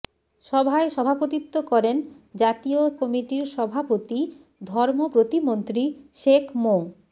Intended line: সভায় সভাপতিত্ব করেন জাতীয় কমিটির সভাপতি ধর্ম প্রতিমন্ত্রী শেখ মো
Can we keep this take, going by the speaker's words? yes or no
yes